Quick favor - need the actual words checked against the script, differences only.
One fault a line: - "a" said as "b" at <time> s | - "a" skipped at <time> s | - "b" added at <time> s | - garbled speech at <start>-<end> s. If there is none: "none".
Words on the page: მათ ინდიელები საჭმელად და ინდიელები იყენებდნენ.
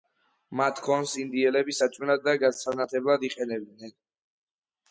- "ქონს" added at 0.8 s
- "ინდიელები" said as "გასანათებლად" at 2.4 s